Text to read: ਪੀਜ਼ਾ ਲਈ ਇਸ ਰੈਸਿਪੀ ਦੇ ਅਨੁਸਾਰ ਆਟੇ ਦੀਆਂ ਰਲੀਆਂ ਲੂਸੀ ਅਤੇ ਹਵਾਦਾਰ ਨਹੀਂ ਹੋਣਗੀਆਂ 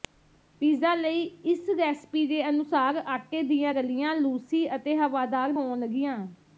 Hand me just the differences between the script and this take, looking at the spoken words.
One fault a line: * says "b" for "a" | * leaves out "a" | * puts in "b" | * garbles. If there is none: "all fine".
* leaves out "ਨਹੀਂ"